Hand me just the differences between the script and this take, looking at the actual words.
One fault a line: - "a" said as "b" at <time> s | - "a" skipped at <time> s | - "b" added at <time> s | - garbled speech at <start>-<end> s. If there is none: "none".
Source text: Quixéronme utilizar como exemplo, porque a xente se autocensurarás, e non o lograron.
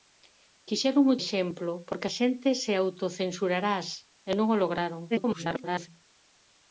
- "utilizar como" skipped at 1.1 s
- garbled speech at 5.1-5.9 s